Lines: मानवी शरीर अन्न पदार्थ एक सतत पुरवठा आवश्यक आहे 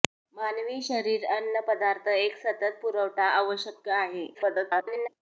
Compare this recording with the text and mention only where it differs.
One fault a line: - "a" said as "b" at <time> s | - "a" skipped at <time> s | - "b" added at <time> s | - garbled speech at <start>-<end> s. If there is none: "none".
- garbled speech at 4.3-5.1 s